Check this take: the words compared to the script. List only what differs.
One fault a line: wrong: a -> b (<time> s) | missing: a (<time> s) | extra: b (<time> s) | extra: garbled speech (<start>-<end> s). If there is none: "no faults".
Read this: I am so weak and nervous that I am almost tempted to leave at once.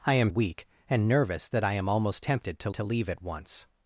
missing: so (0.3 s)
extra: to (2.7 s)